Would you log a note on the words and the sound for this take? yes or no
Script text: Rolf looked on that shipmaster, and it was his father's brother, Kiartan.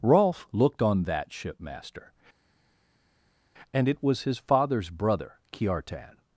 no